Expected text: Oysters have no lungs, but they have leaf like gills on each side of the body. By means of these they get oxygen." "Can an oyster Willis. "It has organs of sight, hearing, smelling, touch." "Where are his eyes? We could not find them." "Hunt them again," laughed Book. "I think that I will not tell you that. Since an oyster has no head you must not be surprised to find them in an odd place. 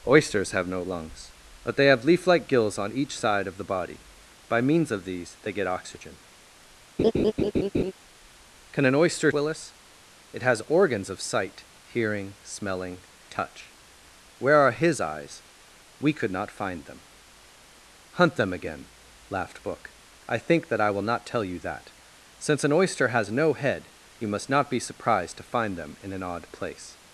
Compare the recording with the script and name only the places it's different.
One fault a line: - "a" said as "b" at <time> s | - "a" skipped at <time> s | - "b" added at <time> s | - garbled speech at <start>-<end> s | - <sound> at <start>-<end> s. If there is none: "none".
- laugh at 7.0-7.9 s